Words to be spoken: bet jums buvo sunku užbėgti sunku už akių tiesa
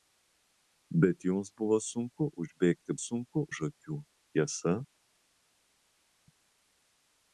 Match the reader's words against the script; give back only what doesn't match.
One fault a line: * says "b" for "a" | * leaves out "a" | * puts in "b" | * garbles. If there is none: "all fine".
all fine